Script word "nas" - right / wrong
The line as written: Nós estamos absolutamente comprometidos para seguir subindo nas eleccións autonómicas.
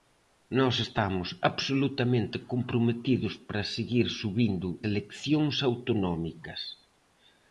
wrong